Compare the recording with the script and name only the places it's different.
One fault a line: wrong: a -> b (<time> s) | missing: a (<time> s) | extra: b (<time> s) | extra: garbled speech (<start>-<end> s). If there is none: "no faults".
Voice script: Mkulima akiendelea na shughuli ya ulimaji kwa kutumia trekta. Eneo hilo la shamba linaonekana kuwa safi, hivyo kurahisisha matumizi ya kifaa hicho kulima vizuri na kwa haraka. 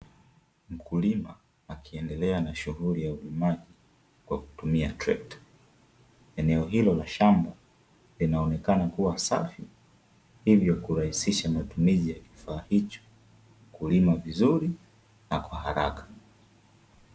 no faults